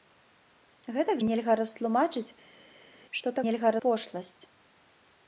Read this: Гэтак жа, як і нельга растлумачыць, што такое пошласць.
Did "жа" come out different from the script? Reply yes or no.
yes